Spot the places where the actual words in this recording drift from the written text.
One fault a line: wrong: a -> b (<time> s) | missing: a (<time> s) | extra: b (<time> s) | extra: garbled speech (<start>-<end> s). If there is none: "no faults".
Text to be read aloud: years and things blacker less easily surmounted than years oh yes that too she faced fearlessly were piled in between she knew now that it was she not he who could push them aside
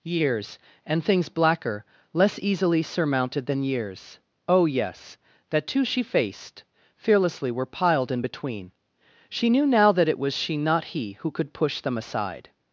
no faults